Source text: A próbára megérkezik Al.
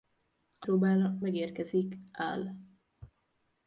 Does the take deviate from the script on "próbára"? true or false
false